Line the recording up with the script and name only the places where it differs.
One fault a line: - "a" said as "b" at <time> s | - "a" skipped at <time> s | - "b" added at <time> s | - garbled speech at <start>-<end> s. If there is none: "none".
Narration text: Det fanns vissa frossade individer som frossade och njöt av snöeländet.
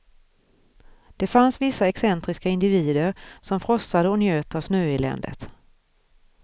- "frossade" said as "excentriska" at 1.8 s